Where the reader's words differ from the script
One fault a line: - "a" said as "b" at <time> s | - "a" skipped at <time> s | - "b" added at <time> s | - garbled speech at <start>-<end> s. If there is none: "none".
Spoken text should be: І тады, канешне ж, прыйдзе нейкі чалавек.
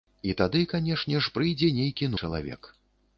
none